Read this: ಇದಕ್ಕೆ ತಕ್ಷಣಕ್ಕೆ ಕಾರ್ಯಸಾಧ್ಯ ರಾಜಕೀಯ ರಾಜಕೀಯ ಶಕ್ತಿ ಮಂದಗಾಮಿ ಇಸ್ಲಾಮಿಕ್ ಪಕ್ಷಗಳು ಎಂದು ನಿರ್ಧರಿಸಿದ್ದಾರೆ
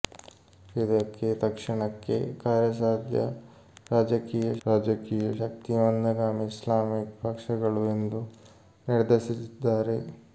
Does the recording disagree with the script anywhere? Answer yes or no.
no